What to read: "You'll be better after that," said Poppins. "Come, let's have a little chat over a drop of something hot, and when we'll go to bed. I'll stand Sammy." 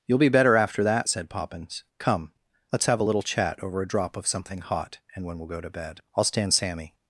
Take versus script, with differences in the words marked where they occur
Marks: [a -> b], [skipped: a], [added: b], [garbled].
"You'll be better after that," said Poppins. "Come, let's have a little chat over a drop of something hot, and when we'll go to bed. I'll stand Sammy."